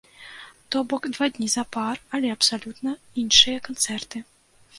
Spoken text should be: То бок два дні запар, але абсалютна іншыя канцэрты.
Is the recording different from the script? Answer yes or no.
no